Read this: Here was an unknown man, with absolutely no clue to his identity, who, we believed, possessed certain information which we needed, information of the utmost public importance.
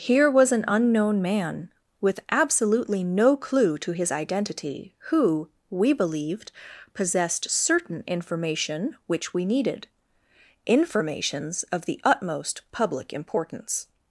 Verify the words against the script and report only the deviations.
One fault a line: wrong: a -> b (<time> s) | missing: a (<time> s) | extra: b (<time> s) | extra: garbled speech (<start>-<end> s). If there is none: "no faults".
wrong: information -> informations (10.7 s)